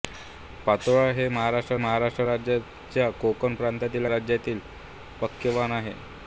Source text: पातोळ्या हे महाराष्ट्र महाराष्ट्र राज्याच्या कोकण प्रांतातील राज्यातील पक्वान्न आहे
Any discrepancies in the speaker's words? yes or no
no